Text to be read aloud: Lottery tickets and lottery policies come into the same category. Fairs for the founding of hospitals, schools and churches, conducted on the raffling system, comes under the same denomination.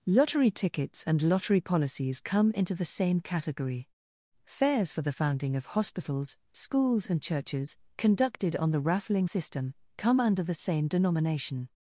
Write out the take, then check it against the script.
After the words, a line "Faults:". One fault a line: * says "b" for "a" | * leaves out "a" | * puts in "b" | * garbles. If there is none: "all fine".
Lottery tickets and lottery policies come into the same category. Fairs for the founding of hospitals, schools and churches, conducted on the raffling system, come under the same denomination.
Faults:
* says "come" for "comes"